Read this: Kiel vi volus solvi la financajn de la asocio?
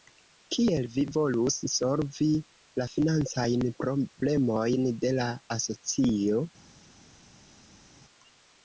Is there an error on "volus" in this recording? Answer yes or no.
no